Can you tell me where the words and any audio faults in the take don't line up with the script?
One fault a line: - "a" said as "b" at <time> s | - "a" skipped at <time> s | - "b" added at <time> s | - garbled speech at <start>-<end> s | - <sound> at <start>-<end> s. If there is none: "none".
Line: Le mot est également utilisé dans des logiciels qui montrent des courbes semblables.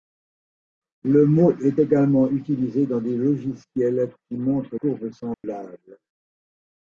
- "des" skipped at 4.8 s
- dropout at 5.3-5.4 s